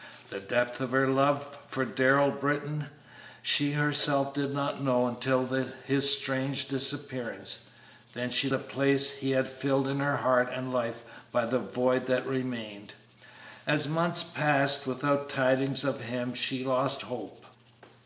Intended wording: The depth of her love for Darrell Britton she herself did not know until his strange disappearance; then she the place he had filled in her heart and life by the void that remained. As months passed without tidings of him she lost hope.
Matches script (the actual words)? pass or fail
pass